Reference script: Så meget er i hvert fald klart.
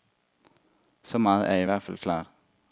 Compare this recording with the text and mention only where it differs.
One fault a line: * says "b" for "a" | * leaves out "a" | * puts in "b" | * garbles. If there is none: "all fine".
all fine